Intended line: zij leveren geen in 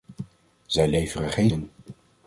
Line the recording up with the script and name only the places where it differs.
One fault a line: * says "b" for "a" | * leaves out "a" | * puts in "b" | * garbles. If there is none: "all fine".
all fine